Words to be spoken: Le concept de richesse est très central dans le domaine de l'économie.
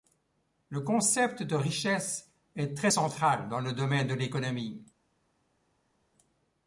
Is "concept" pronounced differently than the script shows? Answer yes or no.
no